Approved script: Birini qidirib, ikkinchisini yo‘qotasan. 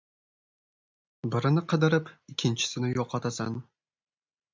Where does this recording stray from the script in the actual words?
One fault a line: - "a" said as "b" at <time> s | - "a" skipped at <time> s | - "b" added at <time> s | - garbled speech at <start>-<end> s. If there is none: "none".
none